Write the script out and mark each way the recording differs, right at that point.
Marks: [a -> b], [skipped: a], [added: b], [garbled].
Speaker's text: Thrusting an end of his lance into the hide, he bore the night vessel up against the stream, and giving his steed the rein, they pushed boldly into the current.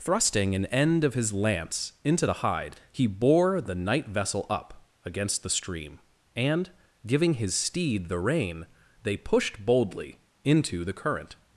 Thrusting an end of his lance into the hide, he bore the night vessel up against the stream, and giving his steed the rein, they pushed boldly into the current.